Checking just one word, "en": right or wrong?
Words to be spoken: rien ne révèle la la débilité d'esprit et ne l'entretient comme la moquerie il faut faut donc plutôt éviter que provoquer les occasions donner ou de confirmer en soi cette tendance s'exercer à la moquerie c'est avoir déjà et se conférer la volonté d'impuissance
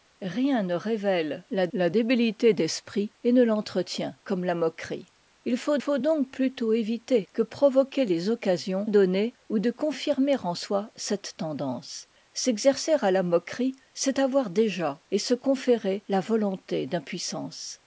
right